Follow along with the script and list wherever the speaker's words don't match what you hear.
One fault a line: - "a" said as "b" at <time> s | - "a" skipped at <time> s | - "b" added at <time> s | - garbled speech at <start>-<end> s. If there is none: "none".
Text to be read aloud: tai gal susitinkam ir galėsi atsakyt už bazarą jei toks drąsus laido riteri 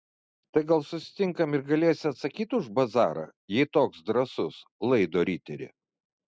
none